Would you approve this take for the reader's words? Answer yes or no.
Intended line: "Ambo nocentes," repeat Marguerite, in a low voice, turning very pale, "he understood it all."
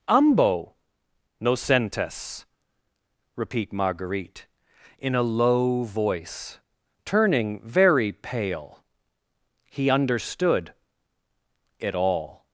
yes